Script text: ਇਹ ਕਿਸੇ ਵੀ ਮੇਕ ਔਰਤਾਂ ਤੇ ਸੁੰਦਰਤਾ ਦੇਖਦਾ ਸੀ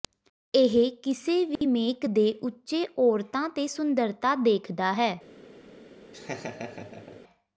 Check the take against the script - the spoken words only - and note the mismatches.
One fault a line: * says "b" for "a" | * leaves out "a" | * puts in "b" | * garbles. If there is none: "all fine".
* puts in "ਦੇ ਉੱਚੇ"
* says "ਹੈ" for "ਸੀ"